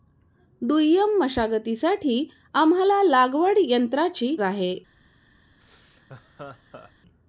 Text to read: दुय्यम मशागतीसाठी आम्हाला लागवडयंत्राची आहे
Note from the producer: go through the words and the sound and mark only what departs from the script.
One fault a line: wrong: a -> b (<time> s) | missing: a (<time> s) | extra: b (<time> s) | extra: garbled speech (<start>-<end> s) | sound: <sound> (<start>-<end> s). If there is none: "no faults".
sound: laugh (5.6-6.9 s)